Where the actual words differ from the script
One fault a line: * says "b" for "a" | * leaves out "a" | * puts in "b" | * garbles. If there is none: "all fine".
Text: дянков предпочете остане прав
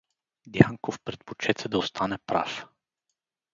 * puts in "да"